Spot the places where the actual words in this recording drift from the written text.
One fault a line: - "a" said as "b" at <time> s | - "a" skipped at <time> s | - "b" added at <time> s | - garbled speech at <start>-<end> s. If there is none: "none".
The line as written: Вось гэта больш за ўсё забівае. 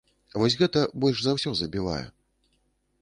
none